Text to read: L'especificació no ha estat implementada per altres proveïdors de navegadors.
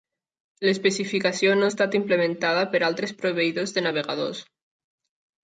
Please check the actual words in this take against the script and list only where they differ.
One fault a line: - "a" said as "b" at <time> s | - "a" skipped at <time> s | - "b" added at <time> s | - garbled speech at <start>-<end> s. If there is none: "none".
none